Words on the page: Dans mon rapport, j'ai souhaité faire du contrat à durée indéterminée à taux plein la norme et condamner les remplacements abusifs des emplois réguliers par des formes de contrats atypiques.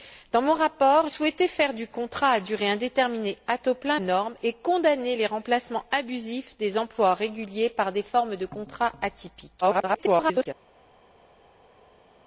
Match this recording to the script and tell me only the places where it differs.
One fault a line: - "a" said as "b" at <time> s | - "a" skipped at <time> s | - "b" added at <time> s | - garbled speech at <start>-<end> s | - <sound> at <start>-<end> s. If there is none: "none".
- "j'ai" skipped at 1.1 s
- "la" skipped at 4.0 s
- garbled speech at 9.6-10.5 s